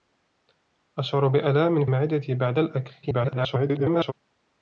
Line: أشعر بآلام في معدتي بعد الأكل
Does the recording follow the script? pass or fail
fail